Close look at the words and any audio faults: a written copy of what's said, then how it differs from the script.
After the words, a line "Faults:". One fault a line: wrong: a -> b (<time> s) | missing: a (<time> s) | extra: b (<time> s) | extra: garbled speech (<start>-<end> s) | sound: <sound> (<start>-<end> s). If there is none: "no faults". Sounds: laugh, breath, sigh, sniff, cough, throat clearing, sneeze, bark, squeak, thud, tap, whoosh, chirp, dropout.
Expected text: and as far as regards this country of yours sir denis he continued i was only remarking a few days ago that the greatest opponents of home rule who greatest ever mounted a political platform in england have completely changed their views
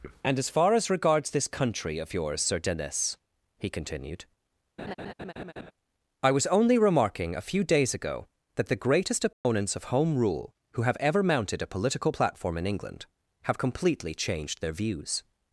and as far as regards this country of yours sir denis he continued i was only remarking a few days ago that the greatest opponents of home rule who have ever mounted a political platform in england have completely changed their views
Faults:
sound: laugh (4.8-5.7 s)
sound: dropout (9.3-9.4 s)
wrong: greatest -> have (10.8 s)